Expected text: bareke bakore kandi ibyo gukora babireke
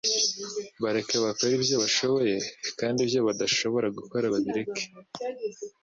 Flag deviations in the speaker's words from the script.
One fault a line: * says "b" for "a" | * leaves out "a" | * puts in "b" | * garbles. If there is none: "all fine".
* puts in "ibyo bashoboye"
* puts in "badashobora"